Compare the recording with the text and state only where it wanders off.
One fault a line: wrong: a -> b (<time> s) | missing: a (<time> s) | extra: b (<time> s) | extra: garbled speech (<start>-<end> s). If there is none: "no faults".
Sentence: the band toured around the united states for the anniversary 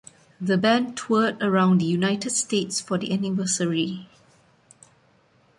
no faults